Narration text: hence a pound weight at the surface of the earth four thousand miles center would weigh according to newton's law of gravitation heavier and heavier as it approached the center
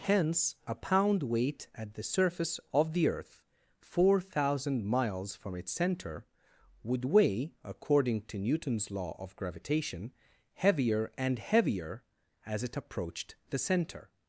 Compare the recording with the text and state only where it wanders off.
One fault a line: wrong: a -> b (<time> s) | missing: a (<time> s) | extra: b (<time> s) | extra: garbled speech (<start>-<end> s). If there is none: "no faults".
extra: from its (5.4 s)